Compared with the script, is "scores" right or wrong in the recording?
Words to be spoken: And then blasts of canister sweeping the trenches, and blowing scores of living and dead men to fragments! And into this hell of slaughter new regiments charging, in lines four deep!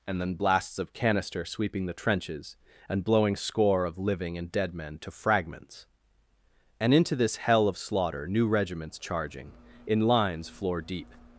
wrong